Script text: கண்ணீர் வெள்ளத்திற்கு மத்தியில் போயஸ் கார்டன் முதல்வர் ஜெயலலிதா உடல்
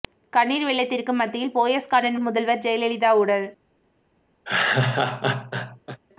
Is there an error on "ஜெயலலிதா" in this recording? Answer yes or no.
no